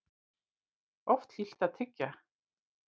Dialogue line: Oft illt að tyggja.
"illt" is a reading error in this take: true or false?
false